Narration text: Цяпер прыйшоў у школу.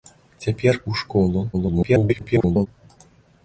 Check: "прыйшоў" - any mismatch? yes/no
yes